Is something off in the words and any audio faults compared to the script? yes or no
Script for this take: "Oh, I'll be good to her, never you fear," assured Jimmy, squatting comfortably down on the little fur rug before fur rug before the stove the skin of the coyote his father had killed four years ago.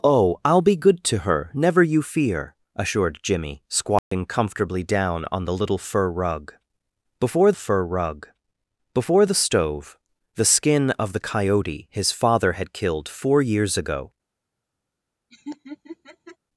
yes